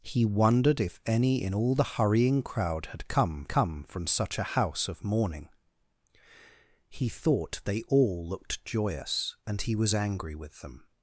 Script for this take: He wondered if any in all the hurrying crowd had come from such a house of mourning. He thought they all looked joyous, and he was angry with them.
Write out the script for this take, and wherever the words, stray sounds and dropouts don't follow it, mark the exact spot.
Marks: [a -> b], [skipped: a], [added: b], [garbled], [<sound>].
He wondered if any in all the hurrying crowd had come [added: come] from such a house of mourning. He thought they all looked joyous, and he was angry with them.